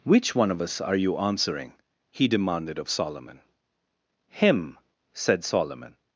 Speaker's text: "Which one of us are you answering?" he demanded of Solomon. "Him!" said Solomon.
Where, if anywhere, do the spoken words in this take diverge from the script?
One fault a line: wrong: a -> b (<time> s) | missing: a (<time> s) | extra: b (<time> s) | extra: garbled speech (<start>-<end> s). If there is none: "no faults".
no faults